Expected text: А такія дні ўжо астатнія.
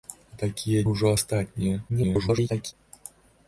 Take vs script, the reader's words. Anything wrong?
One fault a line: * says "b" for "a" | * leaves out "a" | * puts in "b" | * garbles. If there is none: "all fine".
* leaves out "дні"
* garbles